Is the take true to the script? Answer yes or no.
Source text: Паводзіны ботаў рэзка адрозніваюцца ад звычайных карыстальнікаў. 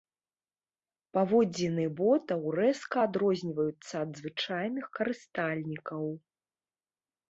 yes